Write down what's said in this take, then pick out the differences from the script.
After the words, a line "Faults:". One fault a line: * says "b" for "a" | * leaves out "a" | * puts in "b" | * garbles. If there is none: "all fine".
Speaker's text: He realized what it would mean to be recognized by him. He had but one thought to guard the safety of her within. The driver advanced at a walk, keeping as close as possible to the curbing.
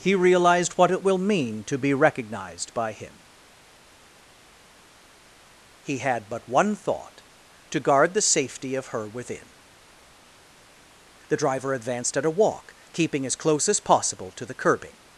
He realized what it will mean to be recognized by him. He had but one thought to guard the safety of her within. The driver advanced at a walk, keeping as close as possible to the curbing.
Faults:
* says "will" for "would"